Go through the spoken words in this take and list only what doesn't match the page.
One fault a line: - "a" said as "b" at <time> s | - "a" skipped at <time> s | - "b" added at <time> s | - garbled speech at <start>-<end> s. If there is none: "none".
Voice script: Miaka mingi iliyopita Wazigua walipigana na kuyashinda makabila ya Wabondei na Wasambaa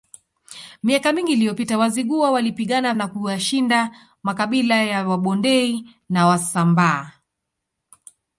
none